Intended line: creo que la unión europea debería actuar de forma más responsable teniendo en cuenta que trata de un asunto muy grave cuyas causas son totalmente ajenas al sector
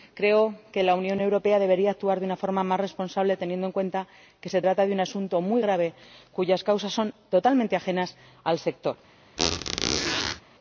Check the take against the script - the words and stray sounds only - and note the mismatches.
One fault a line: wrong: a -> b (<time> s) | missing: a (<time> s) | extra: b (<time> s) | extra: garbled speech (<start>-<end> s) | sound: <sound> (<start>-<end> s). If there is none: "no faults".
extra: una (2.2 s)
extra: se (4.5 s)
sound: squeak (9.4-10.4 s)